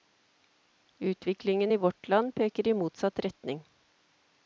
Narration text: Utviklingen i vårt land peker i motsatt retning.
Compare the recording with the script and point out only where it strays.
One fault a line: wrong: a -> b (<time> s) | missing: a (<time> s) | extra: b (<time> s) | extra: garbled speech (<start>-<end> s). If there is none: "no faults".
no faults